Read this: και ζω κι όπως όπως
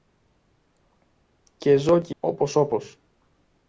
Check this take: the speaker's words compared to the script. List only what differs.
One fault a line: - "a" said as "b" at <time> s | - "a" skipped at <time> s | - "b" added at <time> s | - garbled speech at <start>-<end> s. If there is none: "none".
none